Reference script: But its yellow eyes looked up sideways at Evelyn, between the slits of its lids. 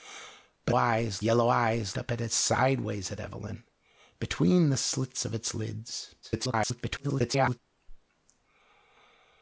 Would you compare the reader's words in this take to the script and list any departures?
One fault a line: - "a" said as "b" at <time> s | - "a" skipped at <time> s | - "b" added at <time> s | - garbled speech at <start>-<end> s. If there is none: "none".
- "its" said as "eyes" at 0.7 s
- "looked" skipped at 2.0 s
- garbled speech at 6.2-7.6 s